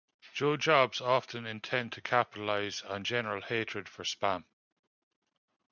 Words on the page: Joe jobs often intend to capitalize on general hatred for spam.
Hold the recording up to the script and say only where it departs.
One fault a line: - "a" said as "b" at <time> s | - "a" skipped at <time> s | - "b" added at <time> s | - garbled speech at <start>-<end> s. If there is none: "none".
none